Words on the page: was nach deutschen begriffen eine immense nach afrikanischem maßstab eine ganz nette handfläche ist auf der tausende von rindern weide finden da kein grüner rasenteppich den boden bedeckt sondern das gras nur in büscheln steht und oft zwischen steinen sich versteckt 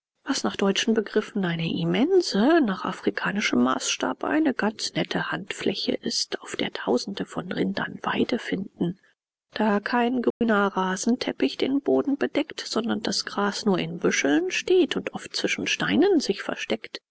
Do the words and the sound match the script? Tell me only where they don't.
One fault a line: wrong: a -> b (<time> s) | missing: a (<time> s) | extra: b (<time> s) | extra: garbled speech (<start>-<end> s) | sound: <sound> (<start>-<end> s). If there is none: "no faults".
sound: dropout (10.3-10.4 s)